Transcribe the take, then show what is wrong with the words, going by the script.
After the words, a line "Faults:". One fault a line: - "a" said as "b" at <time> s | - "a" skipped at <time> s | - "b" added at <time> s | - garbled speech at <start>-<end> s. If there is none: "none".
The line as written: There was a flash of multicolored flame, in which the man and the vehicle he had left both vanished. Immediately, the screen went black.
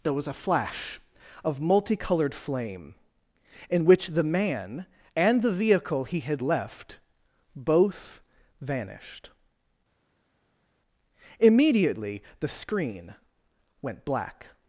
There was a flash of multicolored flame, in which the man and the vehicle he had left both vanished. Immediately, the screen went black.
Faults:
none